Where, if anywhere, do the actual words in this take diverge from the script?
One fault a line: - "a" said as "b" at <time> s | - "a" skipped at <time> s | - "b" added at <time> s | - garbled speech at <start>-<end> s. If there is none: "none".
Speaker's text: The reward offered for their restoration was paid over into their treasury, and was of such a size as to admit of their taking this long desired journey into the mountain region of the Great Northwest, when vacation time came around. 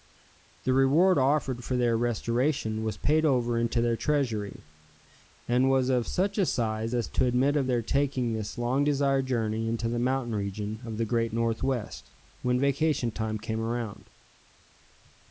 none